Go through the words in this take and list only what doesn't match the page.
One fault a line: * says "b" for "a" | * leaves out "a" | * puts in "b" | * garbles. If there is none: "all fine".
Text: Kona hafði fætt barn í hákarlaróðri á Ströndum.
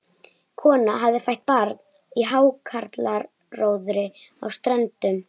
all fine